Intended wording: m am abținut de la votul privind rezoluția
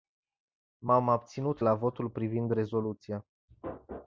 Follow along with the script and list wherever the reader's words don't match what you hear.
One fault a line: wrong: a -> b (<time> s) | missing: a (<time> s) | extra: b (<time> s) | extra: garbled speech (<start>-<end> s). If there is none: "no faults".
missing: de (1.6 s)